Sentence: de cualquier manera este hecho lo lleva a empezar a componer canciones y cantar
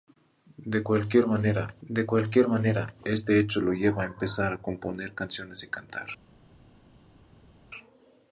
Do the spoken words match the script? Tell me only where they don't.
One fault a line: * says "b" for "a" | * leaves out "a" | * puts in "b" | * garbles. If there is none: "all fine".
* puts in "de cualquier manera"